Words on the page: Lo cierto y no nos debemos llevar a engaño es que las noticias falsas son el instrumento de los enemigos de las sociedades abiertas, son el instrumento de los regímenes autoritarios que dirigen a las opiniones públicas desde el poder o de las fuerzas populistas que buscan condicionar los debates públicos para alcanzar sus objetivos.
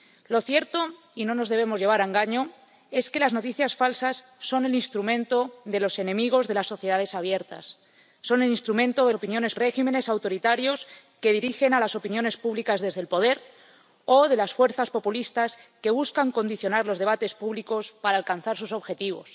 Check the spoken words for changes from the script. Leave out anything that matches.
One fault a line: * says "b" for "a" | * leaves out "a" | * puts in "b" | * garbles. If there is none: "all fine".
* says "opiniones" for "los"